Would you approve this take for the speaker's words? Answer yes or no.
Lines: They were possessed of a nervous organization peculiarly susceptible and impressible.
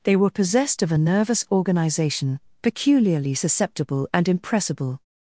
yes